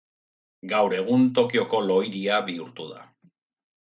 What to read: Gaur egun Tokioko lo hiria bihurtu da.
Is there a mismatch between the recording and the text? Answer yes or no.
no